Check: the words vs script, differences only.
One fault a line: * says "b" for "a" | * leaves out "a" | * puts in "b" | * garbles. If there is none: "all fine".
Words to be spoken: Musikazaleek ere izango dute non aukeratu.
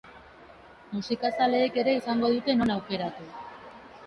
all fine